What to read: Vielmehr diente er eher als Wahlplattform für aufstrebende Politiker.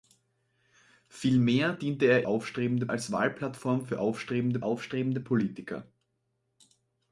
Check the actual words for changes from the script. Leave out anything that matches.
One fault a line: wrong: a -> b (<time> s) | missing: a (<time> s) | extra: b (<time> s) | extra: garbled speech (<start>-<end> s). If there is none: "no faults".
wrong: eher -> aufstrebende (2.3 s)
extra: aufstrebende (4.6 s)